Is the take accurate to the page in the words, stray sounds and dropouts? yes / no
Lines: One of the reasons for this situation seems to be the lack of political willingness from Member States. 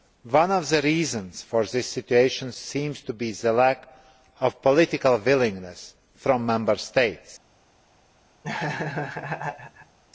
no